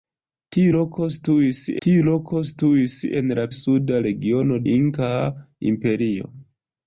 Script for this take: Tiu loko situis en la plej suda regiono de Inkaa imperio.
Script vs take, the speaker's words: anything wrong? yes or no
yes